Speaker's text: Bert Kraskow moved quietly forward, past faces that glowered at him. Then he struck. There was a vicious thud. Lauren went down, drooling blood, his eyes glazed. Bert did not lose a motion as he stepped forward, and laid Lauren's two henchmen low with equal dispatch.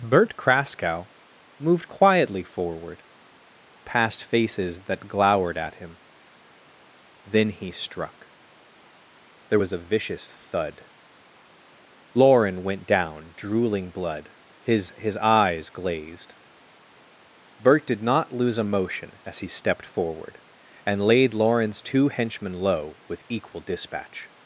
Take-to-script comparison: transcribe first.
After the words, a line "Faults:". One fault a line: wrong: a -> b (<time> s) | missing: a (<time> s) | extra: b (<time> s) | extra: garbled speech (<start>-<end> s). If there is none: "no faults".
Bert Kraskow moved quietly forward, past faces that glowered at him. Then he struck. There was a vicious thud. Lauren went down, drooling blood, his his eyes glazed. Bert did not lose a motion as he stepped forward, and laid Lauren's two henchmen low with equal dispatch.
Faults:
extra: his (15.0 s)